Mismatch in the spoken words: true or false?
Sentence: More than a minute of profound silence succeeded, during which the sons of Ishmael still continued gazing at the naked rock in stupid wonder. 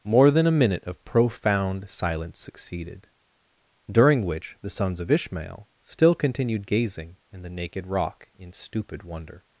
true